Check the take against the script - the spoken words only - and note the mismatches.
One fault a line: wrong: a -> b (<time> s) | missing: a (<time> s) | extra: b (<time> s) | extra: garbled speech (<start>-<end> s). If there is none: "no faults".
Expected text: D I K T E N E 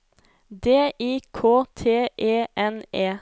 no faults